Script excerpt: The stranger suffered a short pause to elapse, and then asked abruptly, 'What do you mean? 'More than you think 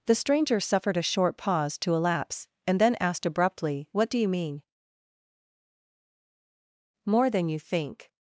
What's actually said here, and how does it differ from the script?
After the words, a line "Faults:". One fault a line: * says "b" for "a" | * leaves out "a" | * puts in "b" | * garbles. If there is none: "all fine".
The stranger suffered a short pause to elapse, and then asked abruptly, 'What do you mean? 'More than you think
Faults:
all fine